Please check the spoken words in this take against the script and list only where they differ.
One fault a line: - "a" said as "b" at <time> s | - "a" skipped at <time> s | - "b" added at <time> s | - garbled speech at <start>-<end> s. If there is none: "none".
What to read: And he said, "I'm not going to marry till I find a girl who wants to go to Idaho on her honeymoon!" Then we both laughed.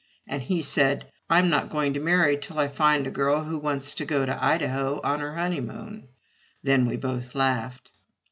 none